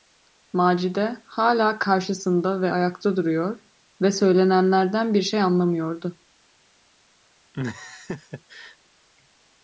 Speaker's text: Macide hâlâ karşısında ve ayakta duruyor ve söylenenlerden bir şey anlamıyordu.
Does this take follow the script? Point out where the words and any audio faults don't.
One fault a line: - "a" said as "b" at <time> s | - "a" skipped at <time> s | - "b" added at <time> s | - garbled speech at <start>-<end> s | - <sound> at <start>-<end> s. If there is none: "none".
- laugh at 7.5-8.8 s